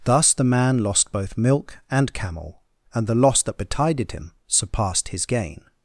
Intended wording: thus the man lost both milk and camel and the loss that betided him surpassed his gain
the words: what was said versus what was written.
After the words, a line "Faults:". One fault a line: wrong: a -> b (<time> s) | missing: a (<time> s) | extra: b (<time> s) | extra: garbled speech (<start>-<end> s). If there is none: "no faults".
thus the man lost both milk and camel and the loss that betided him surpassed his gain
Faults:
no faults